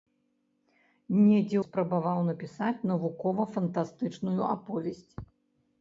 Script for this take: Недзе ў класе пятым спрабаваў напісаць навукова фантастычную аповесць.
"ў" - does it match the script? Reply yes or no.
no